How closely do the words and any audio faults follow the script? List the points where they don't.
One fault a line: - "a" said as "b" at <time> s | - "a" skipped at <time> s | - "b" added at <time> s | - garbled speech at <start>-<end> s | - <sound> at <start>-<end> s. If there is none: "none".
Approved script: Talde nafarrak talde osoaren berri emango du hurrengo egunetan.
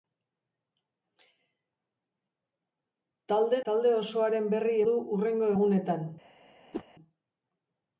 - "nafarrak" skipped at 3.6 s
- "emango" skipped at 4.8 s
- whoosh at 6.7-6.8 s